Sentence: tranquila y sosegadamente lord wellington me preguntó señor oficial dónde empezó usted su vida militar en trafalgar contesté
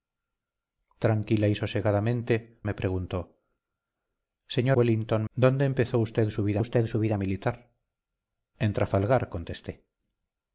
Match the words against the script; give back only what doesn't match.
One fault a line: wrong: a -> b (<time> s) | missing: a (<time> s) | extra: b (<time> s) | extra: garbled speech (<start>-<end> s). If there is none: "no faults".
missing: lord wellington (2.6 s)
wrong: oficial -> wellington (4.7 s)
extra: usted su vida (6.6 s)